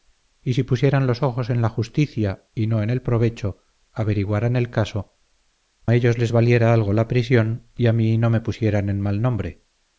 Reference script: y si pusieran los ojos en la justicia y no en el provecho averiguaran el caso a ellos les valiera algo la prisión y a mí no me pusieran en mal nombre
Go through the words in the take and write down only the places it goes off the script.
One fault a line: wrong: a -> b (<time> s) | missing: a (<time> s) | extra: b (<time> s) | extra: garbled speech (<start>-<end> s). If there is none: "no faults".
no faults